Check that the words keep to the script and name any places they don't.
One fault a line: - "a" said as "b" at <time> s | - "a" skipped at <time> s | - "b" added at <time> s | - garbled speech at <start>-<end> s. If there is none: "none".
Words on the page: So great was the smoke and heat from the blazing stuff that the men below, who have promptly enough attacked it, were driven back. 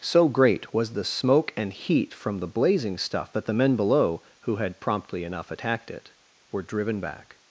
- "have" said as "had" at 4.5 s